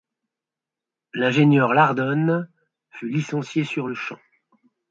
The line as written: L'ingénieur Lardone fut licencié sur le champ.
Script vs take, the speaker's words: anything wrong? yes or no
no